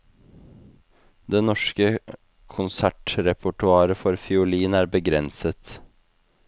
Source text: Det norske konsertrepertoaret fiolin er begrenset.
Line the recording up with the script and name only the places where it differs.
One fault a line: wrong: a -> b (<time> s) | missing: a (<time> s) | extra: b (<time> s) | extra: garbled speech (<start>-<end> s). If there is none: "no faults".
extra: for (4.0 s)